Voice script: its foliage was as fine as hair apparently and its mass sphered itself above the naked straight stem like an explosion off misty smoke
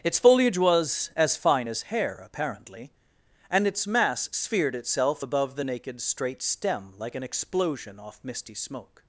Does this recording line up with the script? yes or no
yes